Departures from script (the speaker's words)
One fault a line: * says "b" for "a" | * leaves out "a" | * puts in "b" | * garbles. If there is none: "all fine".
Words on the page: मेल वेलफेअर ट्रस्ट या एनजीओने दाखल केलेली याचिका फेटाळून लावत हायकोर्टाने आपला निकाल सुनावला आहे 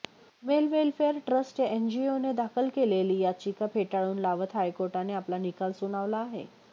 all fine